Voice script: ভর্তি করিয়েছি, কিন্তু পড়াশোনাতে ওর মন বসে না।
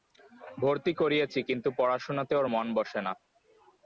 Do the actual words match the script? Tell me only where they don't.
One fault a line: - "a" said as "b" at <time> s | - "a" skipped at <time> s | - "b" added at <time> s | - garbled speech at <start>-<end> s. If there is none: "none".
none